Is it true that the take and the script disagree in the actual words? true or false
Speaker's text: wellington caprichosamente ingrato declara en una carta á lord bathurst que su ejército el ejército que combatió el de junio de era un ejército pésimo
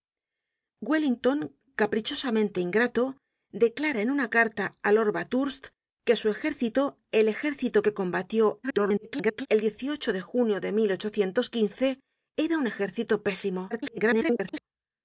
true